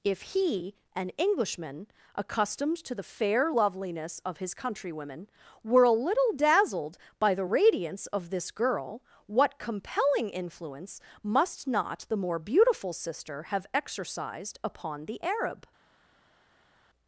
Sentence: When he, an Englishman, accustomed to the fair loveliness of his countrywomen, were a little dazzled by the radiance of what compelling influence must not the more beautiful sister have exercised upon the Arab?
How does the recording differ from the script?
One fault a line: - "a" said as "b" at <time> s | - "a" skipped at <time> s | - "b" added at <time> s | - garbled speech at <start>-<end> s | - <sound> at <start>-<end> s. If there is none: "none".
- "When" said as "If" at 0.0 s
- "this girl" added at 8.3 s